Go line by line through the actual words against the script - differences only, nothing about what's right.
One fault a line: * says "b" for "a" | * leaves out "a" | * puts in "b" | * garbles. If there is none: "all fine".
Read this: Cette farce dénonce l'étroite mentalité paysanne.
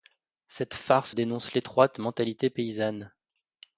all fine